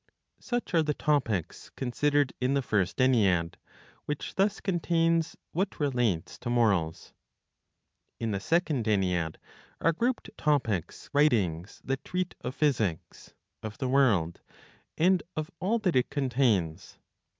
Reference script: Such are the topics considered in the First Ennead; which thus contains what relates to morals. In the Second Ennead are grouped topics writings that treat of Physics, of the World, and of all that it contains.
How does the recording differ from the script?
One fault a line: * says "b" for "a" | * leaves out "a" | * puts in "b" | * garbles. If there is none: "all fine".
all fine